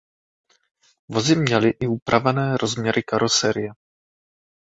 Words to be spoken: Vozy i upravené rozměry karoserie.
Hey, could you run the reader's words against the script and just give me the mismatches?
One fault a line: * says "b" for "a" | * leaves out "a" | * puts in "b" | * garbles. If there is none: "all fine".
* puts in "měly"